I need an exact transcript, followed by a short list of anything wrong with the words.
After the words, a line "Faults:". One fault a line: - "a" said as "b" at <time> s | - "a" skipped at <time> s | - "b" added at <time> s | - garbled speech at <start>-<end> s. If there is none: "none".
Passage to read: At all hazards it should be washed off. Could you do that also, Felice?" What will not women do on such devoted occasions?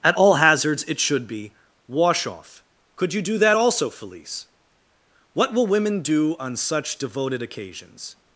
At all hazards it should be wash off. Could you do that also, Felice?" What will women do on such devoted occasions?
Faults:
- "washed" said as "wash" at 1.9 s
- "not" skipped at 5.7 s